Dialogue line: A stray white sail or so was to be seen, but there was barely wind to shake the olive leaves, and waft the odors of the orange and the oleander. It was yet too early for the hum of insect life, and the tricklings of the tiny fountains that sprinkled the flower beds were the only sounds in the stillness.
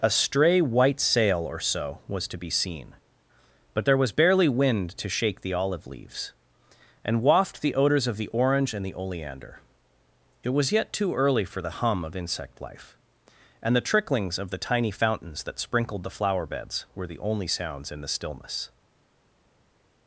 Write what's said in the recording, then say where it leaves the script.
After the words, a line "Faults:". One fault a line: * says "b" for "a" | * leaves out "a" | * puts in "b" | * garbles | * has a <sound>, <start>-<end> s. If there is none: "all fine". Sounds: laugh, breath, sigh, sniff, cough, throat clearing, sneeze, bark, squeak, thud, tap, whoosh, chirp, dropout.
A stray white sail or so was to be seen, but there was barely wind to shake the olive leaves, and waft the odors of the orange and the oleander. It was yet too early for the hum of insect life, and the tricklings of the tiny fountains that sprinkled the flower beds were the only sounds in the stillness.
Faults:
all fine